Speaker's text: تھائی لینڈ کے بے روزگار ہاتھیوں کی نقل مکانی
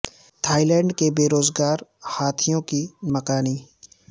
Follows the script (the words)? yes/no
no